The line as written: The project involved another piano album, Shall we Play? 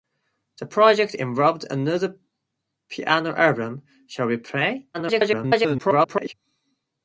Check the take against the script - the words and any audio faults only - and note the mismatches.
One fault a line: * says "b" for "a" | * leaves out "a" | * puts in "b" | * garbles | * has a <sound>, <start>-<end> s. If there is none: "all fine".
* garbles